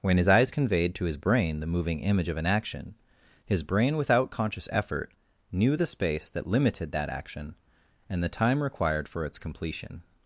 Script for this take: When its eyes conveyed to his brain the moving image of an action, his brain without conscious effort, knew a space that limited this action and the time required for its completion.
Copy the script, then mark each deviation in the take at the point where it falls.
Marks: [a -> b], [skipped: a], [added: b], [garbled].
When [its -> his] eyes conveyed to his brain the moving image of an action, his brain without conscious effort, knew [a -> the] space that limited [this -> that] action and the time required for its completion.